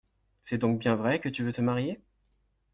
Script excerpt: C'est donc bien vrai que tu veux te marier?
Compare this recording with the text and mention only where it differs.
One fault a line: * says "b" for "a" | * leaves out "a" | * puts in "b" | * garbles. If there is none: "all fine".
all fine